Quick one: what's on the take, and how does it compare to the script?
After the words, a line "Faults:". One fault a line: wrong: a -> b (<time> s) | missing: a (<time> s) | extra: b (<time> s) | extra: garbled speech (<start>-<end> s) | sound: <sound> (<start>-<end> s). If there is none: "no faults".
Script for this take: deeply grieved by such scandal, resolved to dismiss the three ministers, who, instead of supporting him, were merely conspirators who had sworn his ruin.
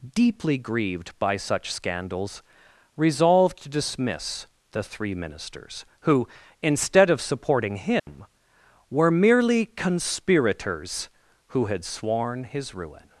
deeply grieved by such scandals, resolved to dismiss the three ministers, who, instead of supporting him, were merely conspirators who had sworn his ruin.
Faults:
wrong: scandal -> scandals (1.7 s)
sound: dropout (8.0-8.1 s)